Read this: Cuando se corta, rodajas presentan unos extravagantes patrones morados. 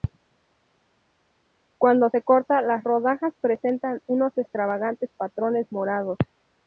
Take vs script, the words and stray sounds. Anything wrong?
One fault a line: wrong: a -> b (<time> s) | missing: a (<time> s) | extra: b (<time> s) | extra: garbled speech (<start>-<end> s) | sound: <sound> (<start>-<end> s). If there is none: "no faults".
extra: las (2.6 s)